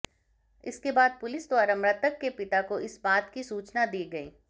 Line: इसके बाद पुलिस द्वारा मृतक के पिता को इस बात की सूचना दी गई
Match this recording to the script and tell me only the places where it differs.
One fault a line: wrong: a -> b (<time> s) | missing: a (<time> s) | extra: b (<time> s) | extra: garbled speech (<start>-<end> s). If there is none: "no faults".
no faults